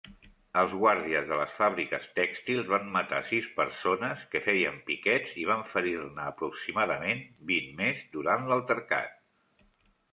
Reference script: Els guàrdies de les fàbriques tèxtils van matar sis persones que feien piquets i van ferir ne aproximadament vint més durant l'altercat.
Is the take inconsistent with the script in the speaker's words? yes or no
no